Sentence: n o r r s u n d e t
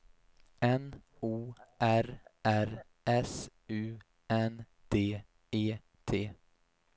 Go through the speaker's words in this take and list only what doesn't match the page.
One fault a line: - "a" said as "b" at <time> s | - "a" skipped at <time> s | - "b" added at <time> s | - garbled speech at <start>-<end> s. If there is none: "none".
none